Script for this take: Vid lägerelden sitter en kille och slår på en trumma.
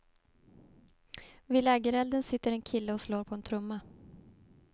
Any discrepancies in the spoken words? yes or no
no